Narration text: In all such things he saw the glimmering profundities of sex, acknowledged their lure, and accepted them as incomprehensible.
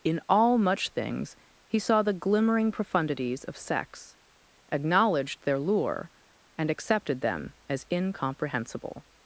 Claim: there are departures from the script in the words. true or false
true